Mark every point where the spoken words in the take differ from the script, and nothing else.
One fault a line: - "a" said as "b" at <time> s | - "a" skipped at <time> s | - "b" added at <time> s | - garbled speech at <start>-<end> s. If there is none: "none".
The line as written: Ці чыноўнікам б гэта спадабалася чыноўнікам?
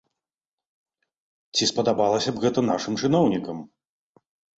- "чыноўнікам" said as "спадабалася" at 1.7 s
- "спадабалася" said as "нашым" at 2.7 s